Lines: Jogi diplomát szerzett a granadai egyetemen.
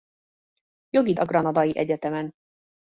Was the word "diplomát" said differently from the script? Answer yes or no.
yes